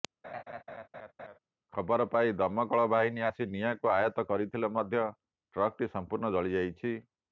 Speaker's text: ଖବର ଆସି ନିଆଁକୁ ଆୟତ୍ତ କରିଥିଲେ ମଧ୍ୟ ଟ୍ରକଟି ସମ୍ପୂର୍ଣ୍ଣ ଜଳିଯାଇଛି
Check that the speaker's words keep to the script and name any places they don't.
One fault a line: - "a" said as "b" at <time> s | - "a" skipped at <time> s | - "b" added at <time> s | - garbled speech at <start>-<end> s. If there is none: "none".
- "ପାଇ ଦମକଳ ବାହିନୀ" added at 2.1 s